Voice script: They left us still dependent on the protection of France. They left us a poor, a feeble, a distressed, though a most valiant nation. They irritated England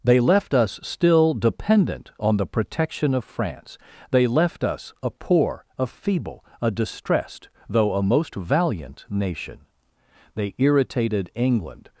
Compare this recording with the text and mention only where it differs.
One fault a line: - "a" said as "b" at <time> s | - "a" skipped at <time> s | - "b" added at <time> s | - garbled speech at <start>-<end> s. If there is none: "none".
none